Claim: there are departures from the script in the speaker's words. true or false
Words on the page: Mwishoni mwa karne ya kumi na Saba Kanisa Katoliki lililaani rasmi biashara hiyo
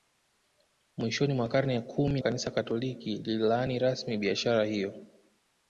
true